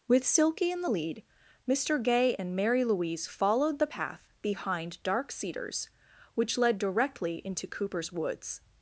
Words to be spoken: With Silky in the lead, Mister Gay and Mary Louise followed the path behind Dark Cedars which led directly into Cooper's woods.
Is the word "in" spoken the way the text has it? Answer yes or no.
yes